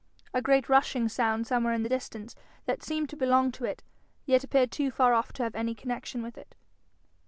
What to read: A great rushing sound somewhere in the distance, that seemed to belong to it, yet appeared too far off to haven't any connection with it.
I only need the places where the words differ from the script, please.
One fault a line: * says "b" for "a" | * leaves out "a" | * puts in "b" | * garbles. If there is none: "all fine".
* says "have" for "haven't"